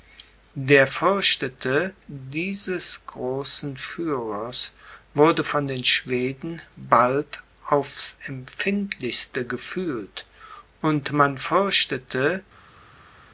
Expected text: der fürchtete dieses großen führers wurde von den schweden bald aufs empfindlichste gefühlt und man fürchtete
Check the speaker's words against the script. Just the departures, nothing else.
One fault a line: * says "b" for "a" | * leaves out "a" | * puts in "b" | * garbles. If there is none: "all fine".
all fine